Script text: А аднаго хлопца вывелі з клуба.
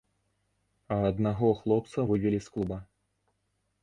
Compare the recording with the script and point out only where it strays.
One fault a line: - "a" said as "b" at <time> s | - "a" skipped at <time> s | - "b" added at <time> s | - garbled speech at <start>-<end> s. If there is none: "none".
none